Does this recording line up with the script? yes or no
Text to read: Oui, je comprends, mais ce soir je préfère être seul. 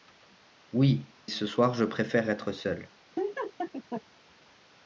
no